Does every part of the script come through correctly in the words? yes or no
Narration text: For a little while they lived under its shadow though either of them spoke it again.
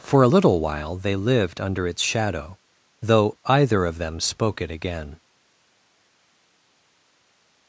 yes